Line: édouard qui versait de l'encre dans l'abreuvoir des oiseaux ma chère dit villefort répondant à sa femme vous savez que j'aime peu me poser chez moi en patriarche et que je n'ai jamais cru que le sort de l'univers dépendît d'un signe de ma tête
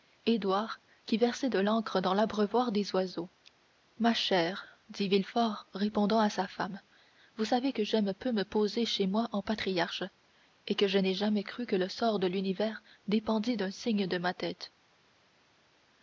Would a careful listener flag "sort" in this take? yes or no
no